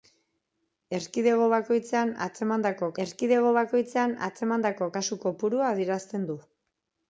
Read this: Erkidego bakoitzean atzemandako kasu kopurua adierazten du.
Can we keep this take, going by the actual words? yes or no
no